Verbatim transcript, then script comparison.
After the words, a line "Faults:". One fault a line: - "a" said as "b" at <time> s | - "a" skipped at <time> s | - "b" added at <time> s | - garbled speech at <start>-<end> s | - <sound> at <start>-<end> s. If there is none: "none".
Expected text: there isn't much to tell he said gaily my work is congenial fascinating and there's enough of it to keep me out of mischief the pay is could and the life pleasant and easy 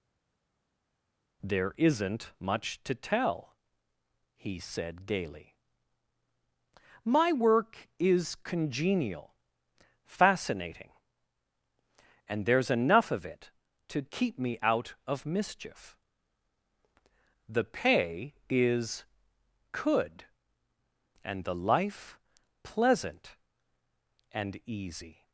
there isn't much to tell he said gaily my work is congenial fascinating and there's enough of it to keep me out of mischief the pay is could and the life pleasant and easy
Faults:
none